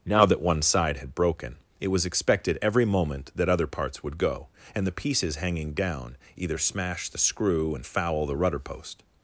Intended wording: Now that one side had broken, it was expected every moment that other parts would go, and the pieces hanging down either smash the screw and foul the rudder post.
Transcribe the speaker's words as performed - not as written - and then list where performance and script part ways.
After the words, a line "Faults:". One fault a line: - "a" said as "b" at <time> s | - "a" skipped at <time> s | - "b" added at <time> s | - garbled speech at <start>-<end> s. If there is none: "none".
Now that one side had broken, it was expected every moment that other parts would go, and the pieces hanging down either smash the screw and foul the rudder post.
Faults:
none